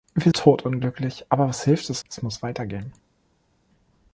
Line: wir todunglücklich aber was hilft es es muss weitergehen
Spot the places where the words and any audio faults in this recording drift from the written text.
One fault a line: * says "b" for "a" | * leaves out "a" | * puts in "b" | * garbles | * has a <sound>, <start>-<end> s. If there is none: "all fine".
all fine